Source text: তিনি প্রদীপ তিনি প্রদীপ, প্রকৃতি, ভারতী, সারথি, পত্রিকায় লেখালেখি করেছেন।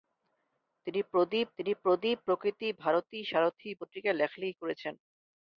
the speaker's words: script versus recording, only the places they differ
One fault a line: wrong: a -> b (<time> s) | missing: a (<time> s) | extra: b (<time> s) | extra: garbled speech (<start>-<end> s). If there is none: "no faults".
no faults